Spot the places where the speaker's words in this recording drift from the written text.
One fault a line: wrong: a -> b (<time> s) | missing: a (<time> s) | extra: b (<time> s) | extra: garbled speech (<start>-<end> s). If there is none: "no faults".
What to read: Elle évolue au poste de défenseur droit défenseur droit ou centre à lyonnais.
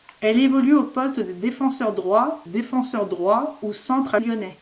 no faults